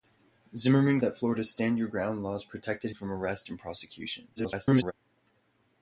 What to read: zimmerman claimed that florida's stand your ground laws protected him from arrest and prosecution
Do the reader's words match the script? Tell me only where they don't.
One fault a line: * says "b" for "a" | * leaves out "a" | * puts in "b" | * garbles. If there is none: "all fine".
* leaves out "claimed"
* leaves out "him"
* garbles